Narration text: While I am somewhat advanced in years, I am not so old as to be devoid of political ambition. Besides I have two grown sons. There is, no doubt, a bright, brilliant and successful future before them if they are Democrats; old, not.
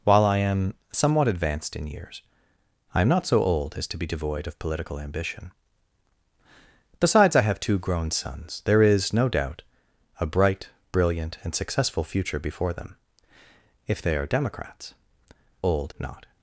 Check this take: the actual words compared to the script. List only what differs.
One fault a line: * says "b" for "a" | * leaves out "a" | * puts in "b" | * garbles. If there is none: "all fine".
all fine